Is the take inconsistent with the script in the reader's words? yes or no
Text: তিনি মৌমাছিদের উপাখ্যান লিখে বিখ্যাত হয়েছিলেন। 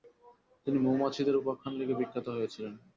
no